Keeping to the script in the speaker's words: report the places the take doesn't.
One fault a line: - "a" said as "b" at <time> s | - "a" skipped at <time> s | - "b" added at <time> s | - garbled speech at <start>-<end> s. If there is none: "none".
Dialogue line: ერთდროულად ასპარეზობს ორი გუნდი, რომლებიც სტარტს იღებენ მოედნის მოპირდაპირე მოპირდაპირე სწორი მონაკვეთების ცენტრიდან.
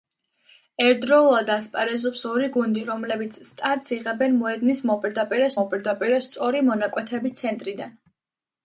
none